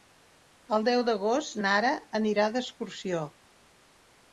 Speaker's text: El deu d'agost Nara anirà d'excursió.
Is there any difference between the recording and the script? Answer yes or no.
no